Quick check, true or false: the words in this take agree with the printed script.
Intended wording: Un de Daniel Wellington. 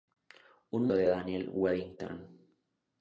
true